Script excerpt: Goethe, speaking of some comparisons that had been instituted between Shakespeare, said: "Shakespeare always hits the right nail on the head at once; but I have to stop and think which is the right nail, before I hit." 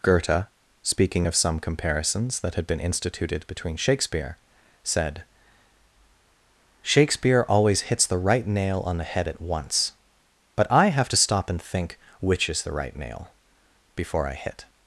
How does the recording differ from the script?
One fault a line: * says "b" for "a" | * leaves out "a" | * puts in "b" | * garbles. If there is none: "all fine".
all fine